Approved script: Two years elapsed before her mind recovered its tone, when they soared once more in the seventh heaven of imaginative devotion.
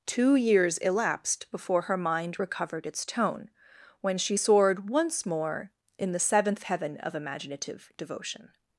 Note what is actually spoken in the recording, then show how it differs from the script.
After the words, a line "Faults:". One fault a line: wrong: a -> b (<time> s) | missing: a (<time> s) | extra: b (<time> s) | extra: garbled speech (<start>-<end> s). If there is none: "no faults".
Two years elapsed before her mind recovered its tone, when she soared once more in the seventh heaven of imaginative devotion.
Faults:
wrong: they -> she (4.2 s)